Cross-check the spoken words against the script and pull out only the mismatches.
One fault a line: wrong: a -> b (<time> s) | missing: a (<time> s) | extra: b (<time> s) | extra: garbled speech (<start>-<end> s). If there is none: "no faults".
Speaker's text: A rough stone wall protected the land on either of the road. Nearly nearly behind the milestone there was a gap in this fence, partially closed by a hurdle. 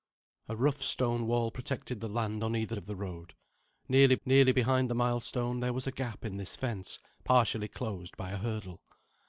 no faults